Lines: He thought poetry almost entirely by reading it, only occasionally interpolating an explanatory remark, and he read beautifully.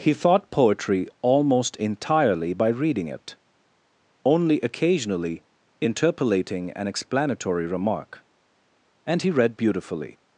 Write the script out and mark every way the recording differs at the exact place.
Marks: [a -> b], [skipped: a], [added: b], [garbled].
He thought poetry almost entirely by reading it, only occasionally interpolating an explanatory remark, and he read beautifully.